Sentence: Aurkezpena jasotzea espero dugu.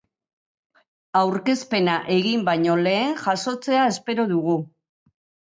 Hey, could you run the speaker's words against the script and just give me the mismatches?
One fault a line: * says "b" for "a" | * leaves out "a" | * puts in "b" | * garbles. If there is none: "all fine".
* puts in "egin baino lehen"